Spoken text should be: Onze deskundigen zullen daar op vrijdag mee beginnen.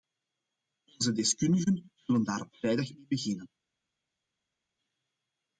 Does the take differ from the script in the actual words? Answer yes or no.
no